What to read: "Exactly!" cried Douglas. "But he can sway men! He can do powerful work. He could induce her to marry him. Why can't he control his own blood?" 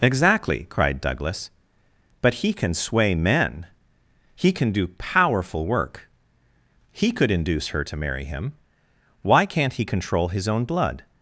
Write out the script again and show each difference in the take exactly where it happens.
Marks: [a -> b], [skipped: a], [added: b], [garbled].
"Exactly!" cried Douglas. "But he can sway men! He can do powerful work. He could induce her to marry him. Why can't he control his own blood?"